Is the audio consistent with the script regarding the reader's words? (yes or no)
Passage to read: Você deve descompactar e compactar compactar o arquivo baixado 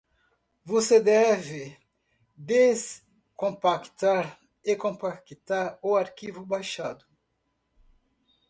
no